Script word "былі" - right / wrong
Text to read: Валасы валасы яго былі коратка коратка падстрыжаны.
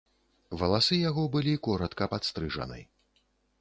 right